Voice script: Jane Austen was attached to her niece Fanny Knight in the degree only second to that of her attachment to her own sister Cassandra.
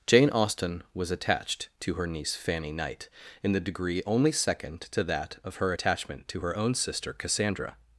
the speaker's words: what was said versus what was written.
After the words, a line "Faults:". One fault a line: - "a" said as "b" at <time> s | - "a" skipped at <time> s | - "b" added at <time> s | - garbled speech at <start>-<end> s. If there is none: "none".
Jane Austen was attached to her niece Fanny Knight in the degree only second to that of her attachment to her own sister Cassandra.
Faults:
none